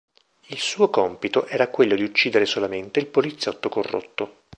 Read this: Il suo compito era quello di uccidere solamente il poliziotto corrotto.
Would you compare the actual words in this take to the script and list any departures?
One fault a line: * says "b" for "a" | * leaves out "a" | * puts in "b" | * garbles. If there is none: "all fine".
all fine